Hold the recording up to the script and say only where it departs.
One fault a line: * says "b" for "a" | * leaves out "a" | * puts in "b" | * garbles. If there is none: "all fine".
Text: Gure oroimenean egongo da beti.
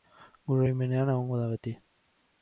all fine